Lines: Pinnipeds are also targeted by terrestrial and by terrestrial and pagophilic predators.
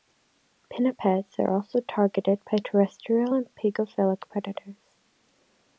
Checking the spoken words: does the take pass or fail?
fail